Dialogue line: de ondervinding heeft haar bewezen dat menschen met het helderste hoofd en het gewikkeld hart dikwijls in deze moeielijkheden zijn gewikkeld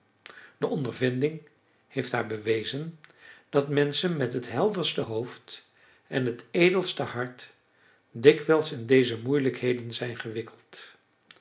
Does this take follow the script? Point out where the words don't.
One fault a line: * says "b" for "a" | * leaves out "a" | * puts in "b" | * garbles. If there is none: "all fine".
* says "edelste" for "gewikkeld"